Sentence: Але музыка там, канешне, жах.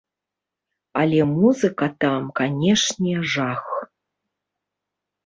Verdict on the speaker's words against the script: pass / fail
pass